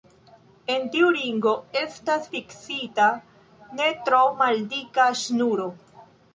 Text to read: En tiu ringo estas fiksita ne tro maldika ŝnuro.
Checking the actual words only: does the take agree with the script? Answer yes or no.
yes